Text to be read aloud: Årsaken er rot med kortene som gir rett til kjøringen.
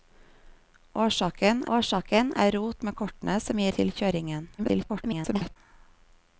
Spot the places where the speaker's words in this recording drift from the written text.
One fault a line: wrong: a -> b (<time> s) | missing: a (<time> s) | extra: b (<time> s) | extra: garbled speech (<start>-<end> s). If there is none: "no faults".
extra: årsaken (1.8 s)
missing: rett (3.7 s)
extra: garbled speech (4.6-5.6 s)